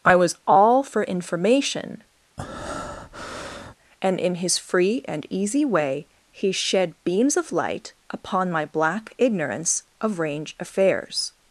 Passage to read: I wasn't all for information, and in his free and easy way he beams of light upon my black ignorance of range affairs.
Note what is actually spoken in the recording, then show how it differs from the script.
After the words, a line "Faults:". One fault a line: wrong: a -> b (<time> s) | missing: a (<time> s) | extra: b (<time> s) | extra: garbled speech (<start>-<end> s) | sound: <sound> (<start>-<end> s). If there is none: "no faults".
I was all for information, and in his free and easy way he shed beams of light upon my black ignorance of range affairs.
Faults:
wrong: wasn't -> was (0.1 s)
sound: breath (2.4-3.7 s)
extra: shed (6.5 s)